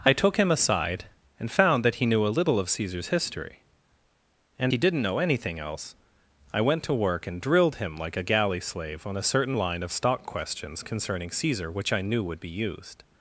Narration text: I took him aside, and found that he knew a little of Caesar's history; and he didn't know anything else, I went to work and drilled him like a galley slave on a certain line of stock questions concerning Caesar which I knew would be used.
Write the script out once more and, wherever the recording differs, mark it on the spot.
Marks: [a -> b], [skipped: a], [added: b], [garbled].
I took him aside, and found that he knew a little of Caesar's history; and he didn't know anything else, I went to work and drilled him like a galley slave on a certain line of stock questions concerning Caesar which I knew would be used.